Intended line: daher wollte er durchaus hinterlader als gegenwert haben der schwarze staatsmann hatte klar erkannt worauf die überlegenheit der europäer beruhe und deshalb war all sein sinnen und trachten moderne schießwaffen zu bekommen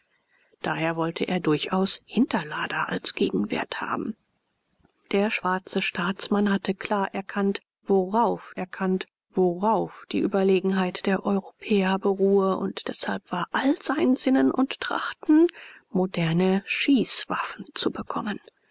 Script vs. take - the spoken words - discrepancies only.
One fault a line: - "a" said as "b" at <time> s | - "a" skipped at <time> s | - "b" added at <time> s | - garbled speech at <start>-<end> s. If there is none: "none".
- "erkannt worauf" added at 8.6 s